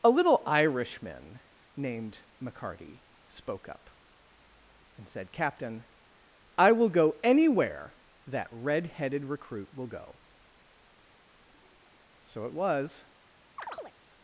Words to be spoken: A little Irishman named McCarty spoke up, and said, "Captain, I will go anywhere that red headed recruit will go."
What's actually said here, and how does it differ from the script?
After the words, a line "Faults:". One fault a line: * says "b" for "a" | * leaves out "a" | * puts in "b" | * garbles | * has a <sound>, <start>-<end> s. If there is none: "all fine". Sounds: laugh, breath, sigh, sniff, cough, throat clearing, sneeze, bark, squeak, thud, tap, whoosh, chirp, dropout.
A little Irishman named McCarty spoke up, and said, "Captain, I will go anywhere that red headed recruit will go." So it was
Faults:
* puts in "So it was"
* has a chirp, 13.6-13.9 s